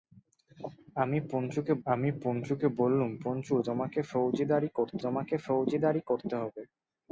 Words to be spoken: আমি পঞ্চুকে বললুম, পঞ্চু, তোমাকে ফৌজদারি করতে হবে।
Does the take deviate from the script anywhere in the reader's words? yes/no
yes